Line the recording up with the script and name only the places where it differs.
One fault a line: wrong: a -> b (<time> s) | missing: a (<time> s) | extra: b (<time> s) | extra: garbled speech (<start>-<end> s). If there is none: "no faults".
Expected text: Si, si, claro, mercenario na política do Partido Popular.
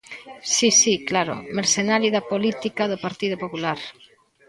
wrong: na -> da (2.1 s)